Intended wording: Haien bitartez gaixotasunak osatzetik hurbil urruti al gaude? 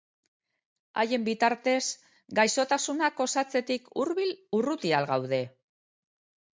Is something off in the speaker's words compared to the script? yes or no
no